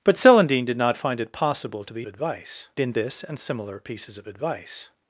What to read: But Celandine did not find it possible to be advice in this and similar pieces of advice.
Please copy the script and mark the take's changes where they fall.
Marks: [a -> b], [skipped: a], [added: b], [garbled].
But Celandine did not find it possible to be advice in this and similar pieces of advice.